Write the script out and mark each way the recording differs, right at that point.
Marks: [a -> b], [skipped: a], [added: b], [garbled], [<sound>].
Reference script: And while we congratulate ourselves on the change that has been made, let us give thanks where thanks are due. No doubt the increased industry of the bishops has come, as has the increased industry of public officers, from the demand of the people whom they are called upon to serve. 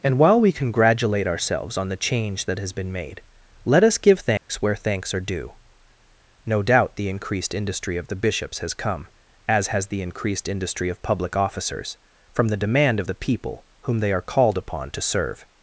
And while we congratulate ourselves on the change that has been made, let us give thanks [dropout] where thanks are due. No doubt the increased industry of the bishops has come, as has the increased industry of public officers, from the demand of the people whom they are called upon to serve.